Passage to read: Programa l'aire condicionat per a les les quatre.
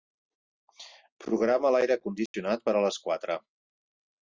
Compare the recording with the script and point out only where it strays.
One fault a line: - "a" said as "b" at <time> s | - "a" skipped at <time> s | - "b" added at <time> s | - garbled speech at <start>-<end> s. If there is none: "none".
- "les" skipped at 3.0 s